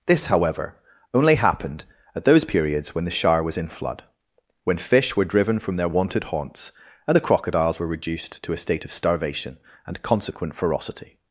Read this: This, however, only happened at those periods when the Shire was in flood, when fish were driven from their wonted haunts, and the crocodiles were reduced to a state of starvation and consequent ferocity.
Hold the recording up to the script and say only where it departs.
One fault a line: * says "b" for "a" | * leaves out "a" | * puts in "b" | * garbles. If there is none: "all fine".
all fine